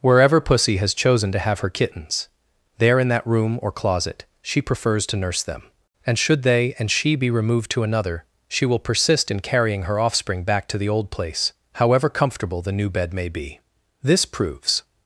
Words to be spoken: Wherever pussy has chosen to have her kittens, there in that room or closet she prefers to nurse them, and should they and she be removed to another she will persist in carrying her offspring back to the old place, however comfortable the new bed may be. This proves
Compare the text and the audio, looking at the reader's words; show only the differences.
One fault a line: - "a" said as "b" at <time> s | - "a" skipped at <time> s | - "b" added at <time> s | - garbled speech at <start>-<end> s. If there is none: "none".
none